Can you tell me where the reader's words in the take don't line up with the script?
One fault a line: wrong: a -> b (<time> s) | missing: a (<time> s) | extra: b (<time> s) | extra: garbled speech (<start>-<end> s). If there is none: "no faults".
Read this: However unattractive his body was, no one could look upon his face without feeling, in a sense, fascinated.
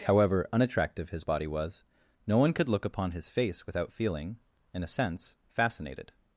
no faults